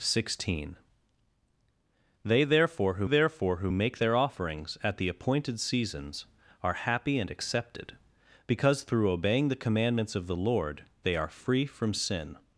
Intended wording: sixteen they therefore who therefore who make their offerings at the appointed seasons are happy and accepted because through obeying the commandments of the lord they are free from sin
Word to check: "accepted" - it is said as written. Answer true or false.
true